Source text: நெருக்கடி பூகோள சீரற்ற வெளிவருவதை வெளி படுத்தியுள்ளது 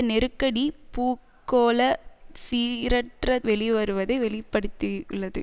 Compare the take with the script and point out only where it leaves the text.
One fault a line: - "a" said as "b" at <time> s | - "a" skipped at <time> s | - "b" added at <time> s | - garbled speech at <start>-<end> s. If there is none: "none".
none